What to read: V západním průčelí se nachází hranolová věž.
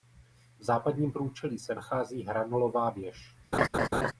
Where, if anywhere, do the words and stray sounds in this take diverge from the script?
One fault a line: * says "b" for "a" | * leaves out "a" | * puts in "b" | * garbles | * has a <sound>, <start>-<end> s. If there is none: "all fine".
* has a laugh, 3.5-4.1 s